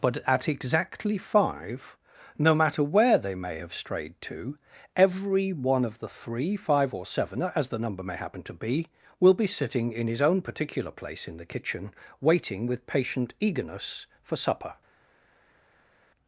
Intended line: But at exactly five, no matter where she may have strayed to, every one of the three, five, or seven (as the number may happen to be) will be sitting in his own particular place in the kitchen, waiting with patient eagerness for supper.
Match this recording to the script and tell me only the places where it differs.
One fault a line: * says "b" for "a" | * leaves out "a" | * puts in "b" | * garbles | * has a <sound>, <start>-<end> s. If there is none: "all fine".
* says "they" for "she"